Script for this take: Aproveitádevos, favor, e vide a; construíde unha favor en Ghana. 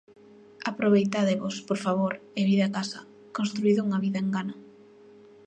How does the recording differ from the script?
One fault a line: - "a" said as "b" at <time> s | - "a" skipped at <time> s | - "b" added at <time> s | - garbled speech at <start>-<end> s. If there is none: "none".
- "por" added at 1.7 s
- "casa" added at 2.8 s
- "favor" said as "vida" at 4.0 s